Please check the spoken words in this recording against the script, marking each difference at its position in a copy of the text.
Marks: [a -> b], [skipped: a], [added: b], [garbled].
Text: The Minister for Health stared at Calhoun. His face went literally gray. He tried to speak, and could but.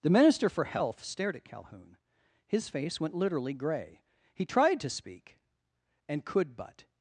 The Minister for Health stared at Calhoun. His face went literally gray. He tried to speak, and could but.